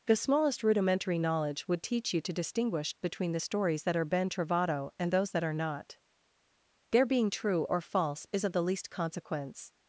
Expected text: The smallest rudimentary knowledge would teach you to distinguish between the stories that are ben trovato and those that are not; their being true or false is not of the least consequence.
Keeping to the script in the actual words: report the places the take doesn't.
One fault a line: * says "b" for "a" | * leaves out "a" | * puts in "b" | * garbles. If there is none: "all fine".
* leaves out "not"